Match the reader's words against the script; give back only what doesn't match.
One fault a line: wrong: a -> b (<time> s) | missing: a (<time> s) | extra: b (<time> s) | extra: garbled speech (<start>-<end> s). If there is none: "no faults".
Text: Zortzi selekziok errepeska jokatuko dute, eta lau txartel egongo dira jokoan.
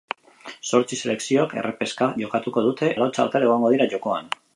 missing: eta (2.9 s)